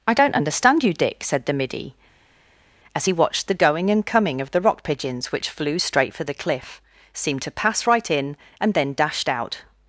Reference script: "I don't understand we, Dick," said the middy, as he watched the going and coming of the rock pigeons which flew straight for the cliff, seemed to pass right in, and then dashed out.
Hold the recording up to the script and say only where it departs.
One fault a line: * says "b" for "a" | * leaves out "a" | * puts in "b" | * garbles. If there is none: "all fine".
* says "you" for "we"